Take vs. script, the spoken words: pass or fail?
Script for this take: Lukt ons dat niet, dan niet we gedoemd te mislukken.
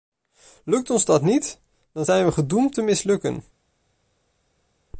fail